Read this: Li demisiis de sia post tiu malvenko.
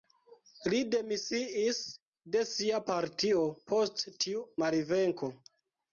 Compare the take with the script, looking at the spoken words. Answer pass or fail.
fail